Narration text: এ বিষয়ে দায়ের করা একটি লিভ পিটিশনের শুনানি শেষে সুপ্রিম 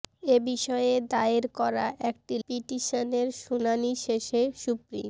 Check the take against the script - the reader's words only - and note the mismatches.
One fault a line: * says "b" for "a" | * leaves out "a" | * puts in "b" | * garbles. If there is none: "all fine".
* leaves out "লিভ"